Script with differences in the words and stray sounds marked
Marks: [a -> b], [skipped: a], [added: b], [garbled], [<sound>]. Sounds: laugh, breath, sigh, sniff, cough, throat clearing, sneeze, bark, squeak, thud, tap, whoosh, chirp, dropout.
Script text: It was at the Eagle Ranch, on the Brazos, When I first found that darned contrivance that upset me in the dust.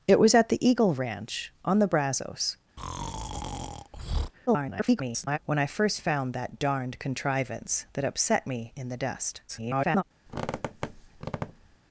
It was at the Eagle Ranch, on the Brazos, [breath] [garbled] When I first found that darned contrivance that upset me in the dust. [garbled] [squeak]